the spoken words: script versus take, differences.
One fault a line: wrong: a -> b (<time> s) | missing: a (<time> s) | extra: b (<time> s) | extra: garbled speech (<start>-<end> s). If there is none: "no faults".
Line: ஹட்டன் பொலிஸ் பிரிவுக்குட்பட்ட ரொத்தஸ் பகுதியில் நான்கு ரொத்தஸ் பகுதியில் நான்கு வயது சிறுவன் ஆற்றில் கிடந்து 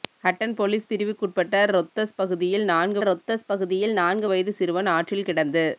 no faults